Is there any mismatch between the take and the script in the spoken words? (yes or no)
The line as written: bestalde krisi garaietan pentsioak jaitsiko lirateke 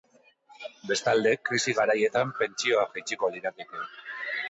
no